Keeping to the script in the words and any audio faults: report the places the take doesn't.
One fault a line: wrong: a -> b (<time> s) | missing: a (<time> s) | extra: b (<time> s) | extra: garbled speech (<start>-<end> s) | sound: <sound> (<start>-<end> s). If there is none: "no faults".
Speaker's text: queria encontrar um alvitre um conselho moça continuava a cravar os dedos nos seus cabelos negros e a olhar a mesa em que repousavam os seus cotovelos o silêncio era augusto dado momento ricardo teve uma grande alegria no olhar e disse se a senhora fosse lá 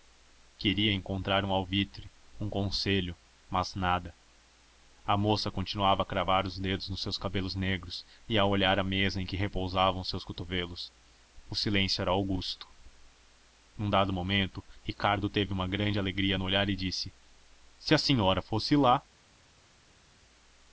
extra: mas nada a (3.5 s)
extra: num (13.8 s)